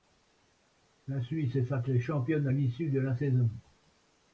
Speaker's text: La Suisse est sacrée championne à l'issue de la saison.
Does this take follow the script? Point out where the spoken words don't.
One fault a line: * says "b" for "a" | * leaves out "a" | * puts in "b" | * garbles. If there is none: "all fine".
all fine